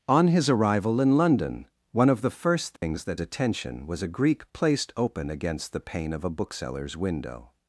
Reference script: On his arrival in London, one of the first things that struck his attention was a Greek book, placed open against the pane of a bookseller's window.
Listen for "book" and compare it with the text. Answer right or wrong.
wrong